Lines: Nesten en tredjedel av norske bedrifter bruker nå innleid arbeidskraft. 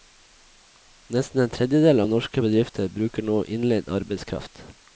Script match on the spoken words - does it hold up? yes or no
yes